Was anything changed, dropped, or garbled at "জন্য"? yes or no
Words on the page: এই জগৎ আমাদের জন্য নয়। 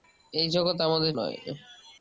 yes